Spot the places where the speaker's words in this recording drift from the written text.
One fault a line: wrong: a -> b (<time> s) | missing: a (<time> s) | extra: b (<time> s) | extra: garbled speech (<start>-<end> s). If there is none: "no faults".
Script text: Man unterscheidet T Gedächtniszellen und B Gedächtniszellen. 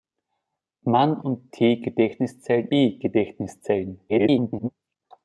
wrong: unterscheidet -> und (1.2 s)
missing: und (2.7 s)
extra: garbled speech (4.1-4.7 s)